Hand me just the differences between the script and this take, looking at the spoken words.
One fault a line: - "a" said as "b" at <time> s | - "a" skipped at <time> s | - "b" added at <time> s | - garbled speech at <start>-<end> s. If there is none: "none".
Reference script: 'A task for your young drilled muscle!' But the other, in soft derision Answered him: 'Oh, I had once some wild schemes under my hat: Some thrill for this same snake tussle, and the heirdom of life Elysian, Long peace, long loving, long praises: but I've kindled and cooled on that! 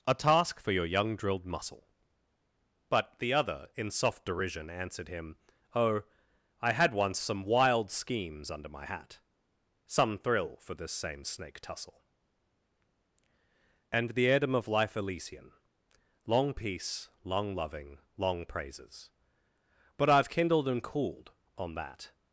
none